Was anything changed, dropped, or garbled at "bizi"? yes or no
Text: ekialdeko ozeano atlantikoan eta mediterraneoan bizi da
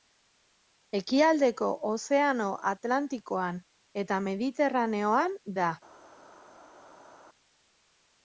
yes